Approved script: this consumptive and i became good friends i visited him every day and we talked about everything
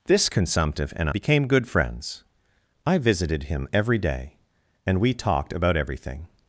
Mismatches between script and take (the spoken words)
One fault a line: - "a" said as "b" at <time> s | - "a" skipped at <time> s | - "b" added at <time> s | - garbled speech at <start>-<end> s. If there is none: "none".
- "i" skipped at 1.1 s